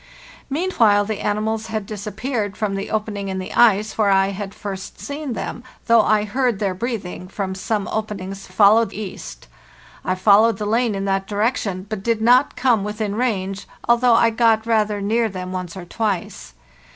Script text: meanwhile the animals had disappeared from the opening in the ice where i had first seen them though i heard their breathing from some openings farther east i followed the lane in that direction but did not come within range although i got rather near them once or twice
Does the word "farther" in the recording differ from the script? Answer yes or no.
yes